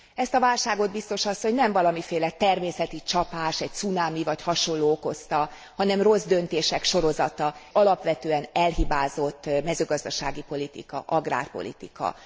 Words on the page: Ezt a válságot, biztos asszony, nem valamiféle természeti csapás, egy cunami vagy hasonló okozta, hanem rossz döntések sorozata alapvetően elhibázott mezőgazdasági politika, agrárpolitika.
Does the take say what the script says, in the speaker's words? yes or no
yes